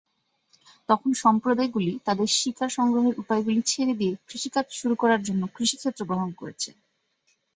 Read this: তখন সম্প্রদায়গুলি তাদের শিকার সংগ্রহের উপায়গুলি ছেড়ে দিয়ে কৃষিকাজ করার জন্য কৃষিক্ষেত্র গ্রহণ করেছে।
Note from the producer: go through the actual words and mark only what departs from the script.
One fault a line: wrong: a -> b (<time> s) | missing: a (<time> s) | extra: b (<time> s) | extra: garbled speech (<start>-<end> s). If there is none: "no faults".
extra: শুরু (4.8 s)